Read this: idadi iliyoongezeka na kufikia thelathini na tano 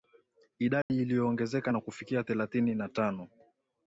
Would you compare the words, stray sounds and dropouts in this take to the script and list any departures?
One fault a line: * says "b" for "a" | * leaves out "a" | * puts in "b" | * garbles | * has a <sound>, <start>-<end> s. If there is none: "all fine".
* has a dropout, 0.8-0.9 s